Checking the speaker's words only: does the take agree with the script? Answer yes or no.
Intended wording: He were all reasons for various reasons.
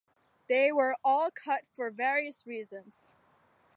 no